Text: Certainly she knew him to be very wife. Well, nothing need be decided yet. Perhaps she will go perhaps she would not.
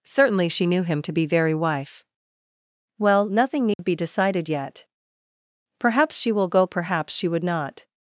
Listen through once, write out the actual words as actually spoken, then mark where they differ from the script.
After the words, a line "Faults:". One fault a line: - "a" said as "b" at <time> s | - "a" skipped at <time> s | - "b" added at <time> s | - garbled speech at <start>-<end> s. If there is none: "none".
Certainly she knew him to be very wife. Well, nothing need be decided yet. Perhaps she will go perhaps she would not.
Faults:
none